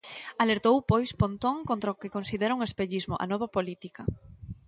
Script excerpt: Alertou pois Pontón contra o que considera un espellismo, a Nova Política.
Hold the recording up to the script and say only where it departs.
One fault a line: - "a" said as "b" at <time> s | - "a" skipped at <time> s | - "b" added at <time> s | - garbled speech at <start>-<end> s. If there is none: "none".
none